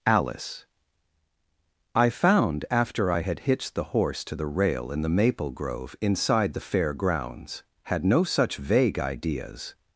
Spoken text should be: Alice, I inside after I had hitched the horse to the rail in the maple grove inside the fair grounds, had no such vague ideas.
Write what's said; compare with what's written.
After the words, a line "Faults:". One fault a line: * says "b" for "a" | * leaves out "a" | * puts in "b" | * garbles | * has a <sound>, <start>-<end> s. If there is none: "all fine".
Alice, I found after I had hitched the horse to the rail in the maple grove inside the fair grounds, had no such vague ideas.
Faults:
* says "found" for "inside"